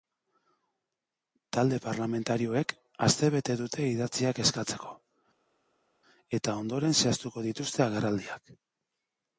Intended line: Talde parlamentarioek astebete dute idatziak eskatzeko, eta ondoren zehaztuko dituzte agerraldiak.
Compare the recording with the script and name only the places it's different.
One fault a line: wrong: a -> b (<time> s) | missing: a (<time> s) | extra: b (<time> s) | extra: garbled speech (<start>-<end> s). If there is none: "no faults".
no faults